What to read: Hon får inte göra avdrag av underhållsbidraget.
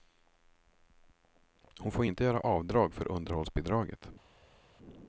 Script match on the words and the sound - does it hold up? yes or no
no